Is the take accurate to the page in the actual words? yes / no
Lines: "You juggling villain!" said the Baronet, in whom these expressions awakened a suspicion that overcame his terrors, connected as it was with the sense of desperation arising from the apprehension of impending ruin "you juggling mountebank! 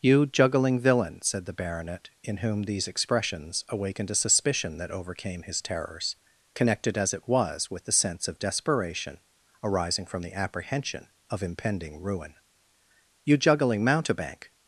yes